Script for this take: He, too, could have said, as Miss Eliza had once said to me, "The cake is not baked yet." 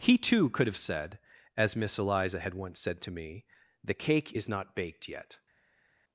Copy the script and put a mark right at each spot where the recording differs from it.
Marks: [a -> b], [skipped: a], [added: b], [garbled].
He, too, could have said, as Miss Eliza had once said to me, "The cake is not baked yet."